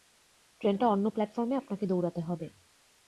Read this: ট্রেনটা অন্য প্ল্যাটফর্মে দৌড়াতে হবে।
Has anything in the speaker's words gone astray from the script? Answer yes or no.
yes